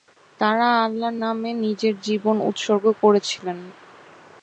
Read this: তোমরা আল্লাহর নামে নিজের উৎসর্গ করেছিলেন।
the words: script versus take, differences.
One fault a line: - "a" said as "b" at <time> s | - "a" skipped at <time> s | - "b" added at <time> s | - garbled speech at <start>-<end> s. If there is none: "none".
- "তোমরা" said as "তারা" at 0.4 s
- "জীবন" added at 2.1 s